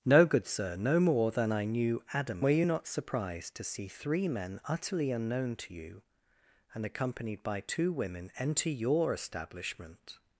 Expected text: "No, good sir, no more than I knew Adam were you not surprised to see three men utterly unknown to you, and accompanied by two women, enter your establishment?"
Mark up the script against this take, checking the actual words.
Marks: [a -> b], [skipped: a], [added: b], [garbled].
"No, good sir, no more than I knew Adam were you not surprised to see three men utterly unknown to you, and accompanied by two women, enter your establishment?"